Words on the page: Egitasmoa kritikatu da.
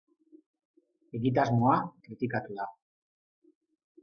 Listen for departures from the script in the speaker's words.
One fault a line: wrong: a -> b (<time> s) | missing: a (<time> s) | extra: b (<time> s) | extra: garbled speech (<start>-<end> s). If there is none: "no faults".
no faults